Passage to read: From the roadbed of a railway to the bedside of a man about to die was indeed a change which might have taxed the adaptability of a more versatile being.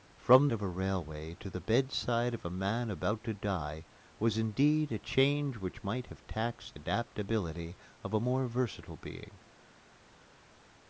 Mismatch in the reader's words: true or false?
true